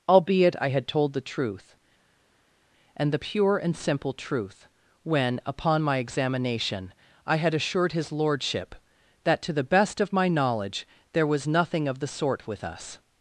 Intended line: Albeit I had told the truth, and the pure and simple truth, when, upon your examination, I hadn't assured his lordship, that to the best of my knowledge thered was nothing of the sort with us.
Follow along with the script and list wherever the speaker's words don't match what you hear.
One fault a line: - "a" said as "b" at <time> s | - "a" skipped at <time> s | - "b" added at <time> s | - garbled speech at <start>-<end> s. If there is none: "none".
- "your" said as "my" at 5.8 s
- "hadn't" said as "had" at 7.4 s
- "thered" said as "there" at 11.1 s